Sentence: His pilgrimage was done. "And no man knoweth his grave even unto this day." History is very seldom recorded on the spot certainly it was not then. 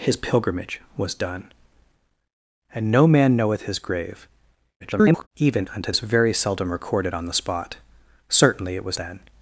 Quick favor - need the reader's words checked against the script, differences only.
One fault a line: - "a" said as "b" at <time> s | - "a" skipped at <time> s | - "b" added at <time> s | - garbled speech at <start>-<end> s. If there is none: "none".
- garbled speech at 4.8-5.3 s
- "this day History" skipped at 5.9 s
- "not" skipped at 9.0 s